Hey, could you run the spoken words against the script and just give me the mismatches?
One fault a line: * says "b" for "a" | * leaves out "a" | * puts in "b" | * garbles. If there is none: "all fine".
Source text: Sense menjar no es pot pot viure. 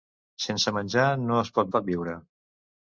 all fine